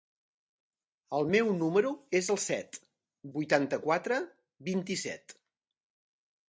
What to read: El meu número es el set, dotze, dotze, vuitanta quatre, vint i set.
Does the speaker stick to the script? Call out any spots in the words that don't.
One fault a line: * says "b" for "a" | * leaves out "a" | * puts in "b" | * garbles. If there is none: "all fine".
* leaves out "dotze dotze"